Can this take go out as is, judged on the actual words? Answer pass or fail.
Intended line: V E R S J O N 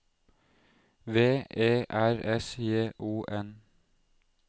pass